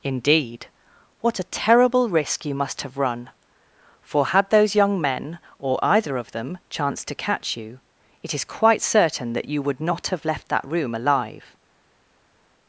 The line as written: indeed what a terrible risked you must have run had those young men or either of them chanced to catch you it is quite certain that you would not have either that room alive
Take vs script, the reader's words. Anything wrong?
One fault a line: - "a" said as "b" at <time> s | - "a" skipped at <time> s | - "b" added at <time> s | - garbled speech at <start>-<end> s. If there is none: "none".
- "risked" said as "risk" at 2.1 s
- "for" added at 4.0 s
- "either" said as "left" at 10.2 s